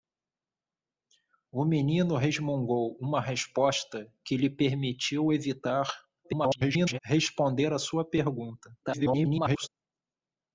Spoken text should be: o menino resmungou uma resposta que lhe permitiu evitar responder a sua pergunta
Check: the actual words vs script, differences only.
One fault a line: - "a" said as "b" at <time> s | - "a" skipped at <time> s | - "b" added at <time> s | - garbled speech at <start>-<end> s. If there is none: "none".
- garbled speech at 6.2-7.0 s
- garbled speech at 8.8-9.7 s